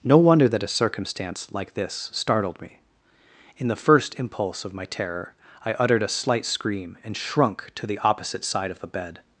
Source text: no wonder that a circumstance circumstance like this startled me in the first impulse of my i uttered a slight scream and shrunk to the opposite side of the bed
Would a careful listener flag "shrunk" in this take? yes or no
no